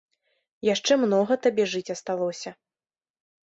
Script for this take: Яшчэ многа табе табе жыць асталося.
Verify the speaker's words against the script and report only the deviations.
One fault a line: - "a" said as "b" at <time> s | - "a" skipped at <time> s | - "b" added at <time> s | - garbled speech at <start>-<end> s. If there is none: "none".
- "табе" skipped at 1.6 s